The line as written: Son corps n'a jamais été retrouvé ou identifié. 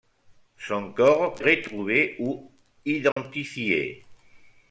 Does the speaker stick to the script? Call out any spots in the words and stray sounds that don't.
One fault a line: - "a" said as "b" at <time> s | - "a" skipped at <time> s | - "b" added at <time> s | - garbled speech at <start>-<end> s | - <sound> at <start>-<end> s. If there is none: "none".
- "n'a jamais été" skipped at 1.4 s
- dropout at 3.1-3.2 s